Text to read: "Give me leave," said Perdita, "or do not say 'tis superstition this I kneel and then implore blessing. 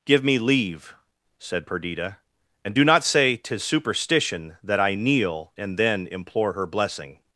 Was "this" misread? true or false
true